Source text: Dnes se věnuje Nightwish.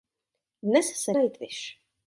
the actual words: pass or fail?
fail